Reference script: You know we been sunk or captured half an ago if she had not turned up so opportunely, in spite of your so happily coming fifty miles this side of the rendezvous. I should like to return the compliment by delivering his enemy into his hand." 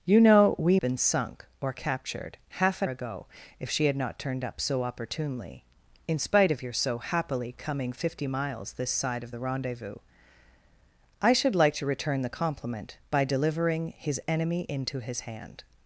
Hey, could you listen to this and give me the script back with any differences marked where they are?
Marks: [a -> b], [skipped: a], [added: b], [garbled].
You know we been sunk or captured half an ago if she had not turned up so opportunely, in spite of your so happily coming fifty miles this side of the rendezvous. I should like to return the compliment by delivering his enemy into his hand."